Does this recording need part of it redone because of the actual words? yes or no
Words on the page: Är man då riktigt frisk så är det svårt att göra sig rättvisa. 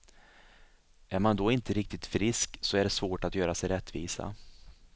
yes